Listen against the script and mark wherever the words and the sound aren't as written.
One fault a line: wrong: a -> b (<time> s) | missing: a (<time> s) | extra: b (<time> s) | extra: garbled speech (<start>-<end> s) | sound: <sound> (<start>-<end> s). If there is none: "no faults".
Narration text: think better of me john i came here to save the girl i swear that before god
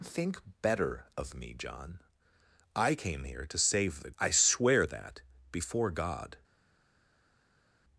missing: girl (4.1 s)